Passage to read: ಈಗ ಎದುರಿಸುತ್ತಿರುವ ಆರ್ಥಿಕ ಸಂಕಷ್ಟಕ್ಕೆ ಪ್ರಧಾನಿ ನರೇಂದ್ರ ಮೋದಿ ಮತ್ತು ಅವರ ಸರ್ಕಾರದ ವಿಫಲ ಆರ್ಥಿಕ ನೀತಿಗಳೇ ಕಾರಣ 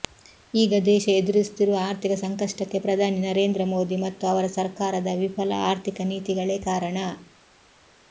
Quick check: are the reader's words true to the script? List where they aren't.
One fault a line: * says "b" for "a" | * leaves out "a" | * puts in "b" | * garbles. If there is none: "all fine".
* puts in "ದೇಶ"